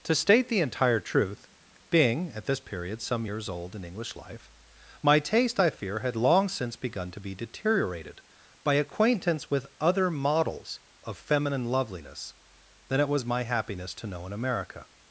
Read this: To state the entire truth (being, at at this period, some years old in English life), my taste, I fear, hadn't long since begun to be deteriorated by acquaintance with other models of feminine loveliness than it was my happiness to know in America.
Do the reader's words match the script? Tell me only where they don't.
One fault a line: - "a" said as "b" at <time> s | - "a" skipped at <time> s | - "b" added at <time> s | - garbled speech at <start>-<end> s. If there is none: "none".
- "at" skipped at 2.5 s
- "hadn't" said as "had" at 6.0 s